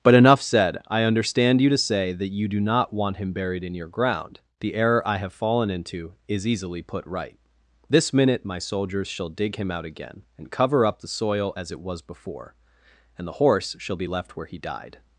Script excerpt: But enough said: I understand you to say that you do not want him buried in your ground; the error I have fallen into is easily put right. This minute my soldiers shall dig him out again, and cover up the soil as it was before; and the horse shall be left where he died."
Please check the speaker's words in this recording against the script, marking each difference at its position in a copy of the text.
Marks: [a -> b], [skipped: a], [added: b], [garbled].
But enough said: I understand you to say that you do not want him buried in your ground; the error I have fallen into is easily put right. This minute my soldiers shall dig him out again, and cover up the soil as it was before; and the horse shall be left where he died."